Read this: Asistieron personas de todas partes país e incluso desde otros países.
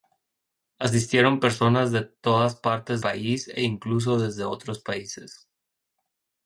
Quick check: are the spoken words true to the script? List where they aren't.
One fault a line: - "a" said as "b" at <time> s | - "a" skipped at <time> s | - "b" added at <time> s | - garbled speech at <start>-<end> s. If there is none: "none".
none